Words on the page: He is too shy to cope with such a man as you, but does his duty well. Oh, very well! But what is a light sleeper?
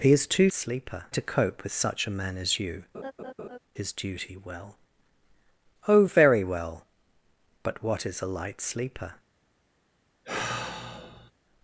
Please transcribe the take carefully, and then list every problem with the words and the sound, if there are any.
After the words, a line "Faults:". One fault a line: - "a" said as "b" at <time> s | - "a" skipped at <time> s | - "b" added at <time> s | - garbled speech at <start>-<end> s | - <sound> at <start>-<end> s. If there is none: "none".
He is too sleeper to cope with such a man as you, his duty well. Oh, very well! But what is a light sleeper?
Faults:
- "shy" said as "sleeper" at 0.5 s
- "but does" skipped at 2.8 s
- laugh at 2.9-3.6 s
- sigh at 10.2-11.3 s